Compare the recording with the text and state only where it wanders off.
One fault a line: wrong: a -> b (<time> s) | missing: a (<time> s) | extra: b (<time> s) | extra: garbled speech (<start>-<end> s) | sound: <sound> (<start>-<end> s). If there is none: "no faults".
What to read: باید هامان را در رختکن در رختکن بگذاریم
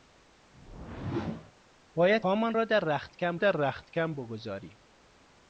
sound: whoosh (0.5-1.5 s)